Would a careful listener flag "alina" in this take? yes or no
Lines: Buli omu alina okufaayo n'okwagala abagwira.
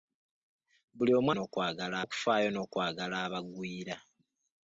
yes